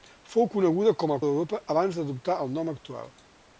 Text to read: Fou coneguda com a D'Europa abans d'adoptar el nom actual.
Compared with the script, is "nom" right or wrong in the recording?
right